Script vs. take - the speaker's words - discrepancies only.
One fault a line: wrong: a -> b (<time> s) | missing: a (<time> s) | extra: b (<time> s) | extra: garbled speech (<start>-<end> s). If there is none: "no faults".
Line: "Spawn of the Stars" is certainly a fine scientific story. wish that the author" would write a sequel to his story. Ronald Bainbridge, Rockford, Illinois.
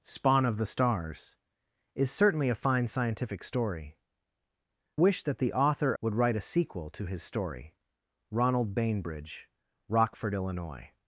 no faults